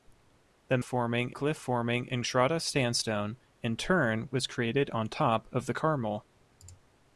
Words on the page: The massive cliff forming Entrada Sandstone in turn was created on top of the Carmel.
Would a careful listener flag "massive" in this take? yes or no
yes